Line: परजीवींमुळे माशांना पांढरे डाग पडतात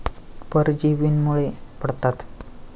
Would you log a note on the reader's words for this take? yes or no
yes